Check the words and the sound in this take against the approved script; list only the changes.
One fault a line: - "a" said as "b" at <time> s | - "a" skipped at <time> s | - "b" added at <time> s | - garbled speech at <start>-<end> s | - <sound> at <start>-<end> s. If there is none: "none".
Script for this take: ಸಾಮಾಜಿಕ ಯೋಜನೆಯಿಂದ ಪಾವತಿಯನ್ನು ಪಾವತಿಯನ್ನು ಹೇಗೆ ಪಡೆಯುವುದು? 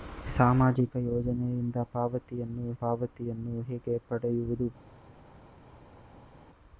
none